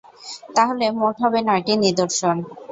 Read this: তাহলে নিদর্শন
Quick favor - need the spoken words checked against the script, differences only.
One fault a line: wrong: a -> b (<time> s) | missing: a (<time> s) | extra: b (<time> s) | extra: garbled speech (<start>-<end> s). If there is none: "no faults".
extra: মোট হবে নয়টি (1.0 s)